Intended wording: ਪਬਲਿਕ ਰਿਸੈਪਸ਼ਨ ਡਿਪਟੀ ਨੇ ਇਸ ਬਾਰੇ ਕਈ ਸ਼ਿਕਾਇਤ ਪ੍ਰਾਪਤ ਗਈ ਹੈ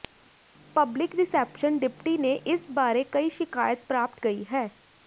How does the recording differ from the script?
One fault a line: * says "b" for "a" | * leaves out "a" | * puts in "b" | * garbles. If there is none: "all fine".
all fine